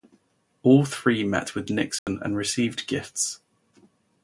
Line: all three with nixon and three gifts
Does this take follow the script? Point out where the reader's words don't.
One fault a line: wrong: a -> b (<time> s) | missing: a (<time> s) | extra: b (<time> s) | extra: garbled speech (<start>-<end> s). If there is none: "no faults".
extra: met (1.2 s)
wrong: three -> received (2.4 s)